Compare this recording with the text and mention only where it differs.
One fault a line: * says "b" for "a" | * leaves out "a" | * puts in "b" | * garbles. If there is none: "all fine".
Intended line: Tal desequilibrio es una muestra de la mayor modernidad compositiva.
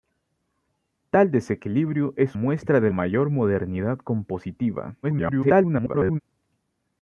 * leaves out "una"
* leaves out "la"
* garbles